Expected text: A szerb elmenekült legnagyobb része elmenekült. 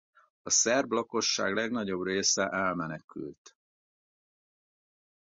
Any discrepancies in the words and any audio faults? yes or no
yes